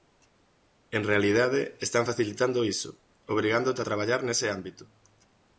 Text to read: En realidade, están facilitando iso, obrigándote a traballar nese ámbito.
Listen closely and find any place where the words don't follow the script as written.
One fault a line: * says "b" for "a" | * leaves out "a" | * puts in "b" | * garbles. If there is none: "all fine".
all fine